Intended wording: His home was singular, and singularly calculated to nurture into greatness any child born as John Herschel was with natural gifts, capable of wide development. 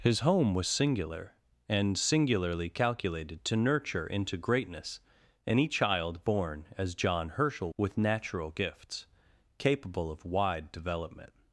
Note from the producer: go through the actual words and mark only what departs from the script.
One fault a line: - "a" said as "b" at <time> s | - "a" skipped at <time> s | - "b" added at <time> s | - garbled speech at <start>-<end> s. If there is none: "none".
- "was" skipped at 7.7 s